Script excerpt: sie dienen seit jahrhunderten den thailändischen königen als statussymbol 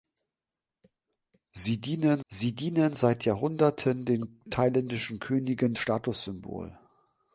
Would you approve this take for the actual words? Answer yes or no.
no